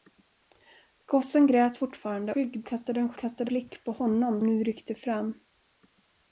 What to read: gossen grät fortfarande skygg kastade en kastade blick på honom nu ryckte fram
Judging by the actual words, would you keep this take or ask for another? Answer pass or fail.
pass